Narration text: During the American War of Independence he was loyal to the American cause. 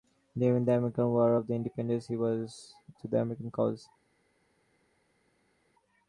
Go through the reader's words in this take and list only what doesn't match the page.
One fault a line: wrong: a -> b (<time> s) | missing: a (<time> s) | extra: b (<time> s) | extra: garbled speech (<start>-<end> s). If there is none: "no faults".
missing: loyal (2.7 s)